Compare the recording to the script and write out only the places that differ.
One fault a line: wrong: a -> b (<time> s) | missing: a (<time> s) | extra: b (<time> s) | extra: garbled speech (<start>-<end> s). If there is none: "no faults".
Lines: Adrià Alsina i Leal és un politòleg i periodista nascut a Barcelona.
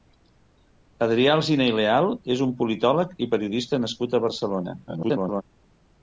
extra: garbled speech (4.9-5.4 s)